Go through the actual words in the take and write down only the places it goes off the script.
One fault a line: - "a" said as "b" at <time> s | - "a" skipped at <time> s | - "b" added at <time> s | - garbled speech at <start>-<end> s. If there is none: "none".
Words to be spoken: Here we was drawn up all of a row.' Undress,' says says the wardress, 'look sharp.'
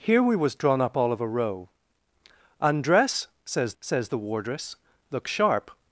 none